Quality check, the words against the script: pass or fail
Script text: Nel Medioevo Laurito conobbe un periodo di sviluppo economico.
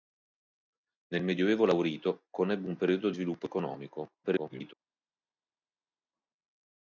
fail